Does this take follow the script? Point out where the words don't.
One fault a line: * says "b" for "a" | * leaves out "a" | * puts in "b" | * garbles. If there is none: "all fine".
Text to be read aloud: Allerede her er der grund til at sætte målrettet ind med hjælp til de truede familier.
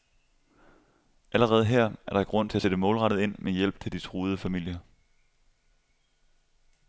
all fine